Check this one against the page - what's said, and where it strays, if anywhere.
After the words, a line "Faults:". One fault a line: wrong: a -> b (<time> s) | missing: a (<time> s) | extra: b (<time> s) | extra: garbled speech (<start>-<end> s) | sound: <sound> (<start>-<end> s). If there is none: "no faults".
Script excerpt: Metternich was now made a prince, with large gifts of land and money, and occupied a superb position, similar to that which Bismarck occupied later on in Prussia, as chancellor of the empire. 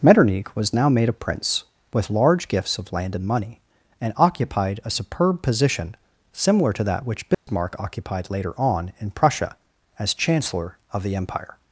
Metternich was now made a prince, with large gifts of land and money, and occupied a superb position, similar to that which Bismarck occupied later on in Prussia, as chancellor of the empire.
Faults:
sound: dropout (7.3-7.5 s)